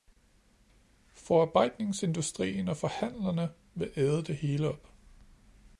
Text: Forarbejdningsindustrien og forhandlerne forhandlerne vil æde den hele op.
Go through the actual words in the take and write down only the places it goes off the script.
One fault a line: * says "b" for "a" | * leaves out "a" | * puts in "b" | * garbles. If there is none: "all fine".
* leaves out "forhandlerne"
* says "det" for "den"